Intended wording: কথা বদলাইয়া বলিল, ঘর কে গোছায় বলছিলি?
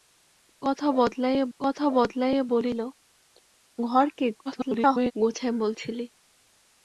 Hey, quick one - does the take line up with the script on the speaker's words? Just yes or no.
no